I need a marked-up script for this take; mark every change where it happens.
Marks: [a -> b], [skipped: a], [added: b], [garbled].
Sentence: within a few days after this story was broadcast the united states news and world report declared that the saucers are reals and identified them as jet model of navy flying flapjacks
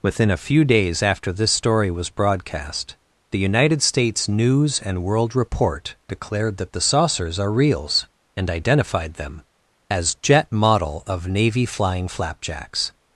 within a few days after this story was broadcast the united states news and world report declared that the saucers are reals and identified them as jet model of navy flying flapjacks